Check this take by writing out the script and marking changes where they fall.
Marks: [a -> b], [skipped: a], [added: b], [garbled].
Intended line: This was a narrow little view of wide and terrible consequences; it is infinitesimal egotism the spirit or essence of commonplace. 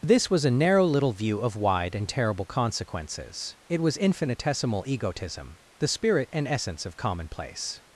This was a narrow little view of wide and terrible consequences; it [is -> was] infinitesimal egotism the spirit [or -> and] essence of commonplace.